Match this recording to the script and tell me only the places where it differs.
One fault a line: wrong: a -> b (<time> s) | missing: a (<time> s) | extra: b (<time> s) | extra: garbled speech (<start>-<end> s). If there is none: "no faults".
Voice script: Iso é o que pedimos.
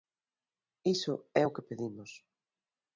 no faults